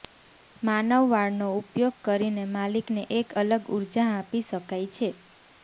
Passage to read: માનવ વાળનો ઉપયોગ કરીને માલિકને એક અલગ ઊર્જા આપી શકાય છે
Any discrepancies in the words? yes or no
no